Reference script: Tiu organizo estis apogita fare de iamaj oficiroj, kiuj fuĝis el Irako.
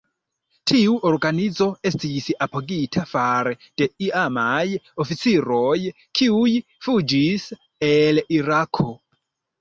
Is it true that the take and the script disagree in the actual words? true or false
false